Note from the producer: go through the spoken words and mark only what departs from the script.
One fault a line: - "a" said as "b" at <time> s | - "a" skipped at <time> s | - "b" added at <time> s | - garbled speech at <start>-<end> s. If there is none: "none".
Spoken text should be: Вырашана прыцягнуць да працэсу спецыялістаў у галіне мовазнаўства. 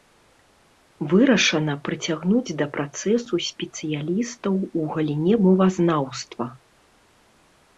none